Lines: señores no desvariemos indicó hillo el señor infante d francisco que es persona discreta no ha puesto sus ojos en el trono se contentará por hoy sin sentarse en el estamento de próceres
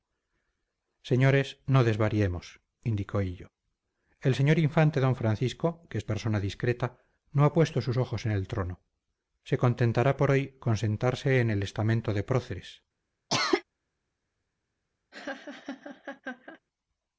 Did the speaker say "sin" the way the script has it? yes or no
no